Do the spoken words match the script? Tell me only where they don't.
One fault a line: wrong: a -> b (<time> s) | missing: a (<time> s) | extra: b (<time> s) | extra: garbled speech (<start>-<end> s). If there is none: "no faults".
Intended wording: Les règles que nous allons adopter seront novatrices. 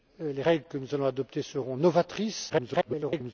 extra: garbled speech (2.5-3.3 s)